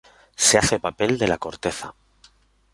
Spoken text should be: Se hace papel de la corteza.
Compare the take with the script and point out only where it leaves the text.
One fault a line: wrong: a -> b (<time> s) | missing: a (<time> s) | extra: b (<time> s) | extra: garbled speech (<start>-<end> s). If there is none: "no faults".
no faults